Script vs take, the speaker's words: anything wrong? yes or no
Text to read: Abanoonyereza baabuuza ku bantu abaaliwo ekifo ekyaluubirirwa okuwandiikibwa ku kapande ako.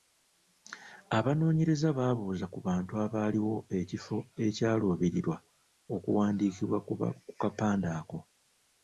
no